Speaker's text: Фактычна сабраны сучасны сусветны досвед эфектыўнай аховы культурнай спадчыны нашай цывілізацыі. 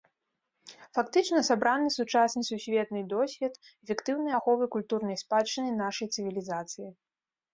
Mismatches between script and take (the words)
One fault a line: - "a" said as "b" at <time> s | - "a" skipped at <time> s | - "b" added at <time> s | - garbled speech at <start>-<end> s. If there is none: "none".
none